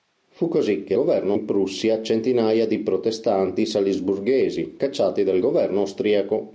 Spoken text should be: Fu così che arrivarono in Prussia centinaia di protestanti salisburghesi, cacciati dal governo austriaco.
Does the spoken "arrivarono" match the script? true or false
false